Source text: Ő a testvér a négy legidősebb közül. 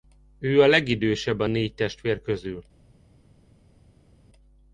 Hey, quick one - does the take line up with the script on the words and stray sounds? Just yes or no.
no